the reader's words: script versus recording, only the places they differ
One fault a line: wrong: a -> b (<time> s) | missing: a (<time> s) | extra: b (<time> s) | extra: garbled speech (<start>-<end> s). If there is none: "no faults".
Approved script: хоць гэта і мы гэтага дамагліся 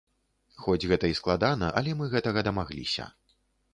extra: складана але (1.2 s)